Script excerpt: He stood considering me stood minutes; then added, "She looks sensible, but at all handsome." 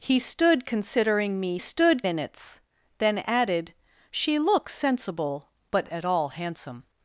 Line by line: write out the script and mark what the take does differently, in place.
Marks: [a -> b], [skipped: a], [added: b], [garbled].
He stood considering me stood minutes; then added, "She looks sensible, but at all handsome."